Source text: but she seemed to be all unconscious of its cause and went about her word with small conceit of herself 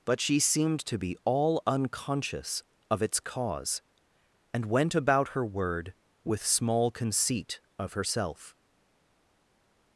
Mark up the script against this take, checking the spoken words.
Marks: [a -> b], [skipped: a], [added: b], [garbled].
but she seemed to be all unconscious of its cause and went about her word with small conceit of herself